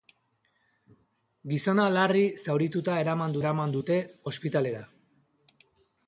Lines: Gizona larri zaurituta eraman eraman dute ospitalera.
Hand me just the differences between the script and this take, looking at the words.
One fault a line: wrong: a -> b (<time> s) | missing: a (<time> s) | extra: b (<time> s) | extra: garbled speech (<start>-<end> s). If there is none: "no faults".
no faults